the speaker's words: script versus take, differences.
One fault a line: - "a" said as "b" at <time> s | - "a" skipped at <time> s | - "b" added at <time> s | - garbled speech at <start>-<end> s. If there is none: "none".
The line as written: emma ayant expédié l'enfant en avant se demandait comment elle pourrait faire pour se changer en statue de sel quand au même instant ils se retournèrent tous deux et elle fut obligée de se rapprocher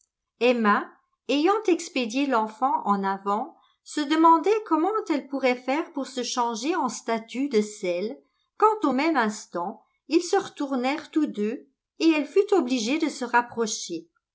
none